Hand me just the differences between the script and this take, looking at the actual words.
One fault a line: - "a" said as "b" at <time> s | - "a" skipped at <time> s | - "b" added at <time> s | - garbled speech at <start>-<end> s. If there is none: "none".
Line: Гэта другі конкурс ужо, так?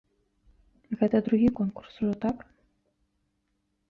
none